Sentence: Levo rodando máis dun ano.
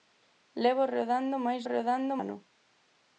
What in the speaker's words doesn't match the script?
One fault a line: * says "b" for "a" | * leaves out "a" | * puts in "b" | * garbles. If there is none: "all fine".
* says "rodando" for "dun"